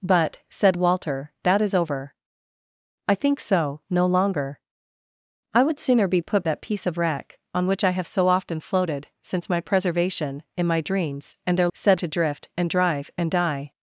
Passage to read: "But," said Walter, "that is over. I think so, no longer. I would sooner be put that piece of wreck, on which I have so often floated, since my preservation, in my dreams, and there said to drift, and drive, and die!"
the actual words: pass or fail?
pass